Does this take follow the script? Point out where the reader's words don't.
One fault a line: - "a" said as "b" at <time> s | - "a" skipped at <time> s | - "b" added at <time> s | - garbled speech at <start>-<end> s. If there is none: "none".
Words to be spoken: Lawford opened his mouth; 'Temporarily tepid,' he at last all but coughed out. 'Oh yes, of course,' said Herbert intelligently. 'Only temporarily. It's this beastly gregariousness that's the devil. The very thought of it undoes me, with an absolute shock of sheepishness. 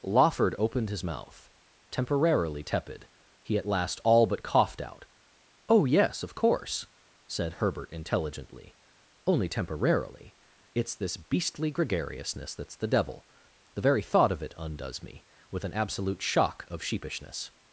none